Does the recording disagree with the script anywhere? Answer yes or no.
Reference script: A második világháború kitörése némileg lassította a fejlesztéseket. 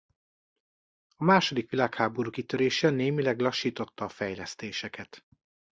no